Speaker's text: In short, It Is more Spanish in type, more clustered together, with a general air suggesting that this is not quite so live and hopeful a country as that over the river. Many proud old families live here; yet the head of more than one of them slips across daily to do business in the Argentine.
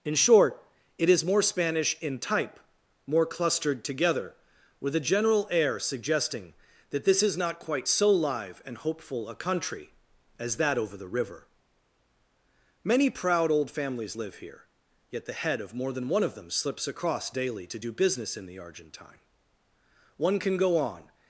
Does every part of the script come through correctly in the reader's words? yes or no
no